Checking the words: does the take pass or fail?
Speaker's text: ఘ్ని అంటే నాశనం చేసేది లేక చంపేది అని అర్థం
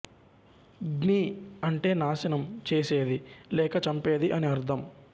pass